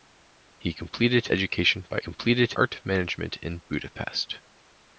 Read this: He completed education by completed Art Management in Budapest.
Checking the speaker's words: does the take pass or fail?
pass